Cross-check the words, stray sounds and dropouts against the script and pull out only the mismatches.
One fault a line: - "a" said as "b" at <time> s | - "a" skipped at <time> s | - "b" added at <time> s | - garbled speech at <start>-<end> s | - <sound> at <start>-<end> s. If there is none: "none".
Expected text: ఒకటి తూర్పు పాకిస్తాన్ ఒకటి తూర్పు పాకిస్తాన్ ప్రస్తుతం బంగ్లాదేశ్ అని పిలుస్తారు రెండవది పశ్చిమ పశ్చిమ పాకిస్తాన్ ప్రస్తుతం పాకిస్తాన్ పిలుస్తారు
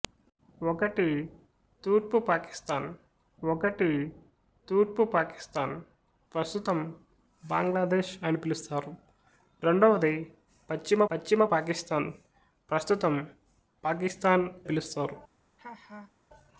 - laugh at 15.6-16.1 s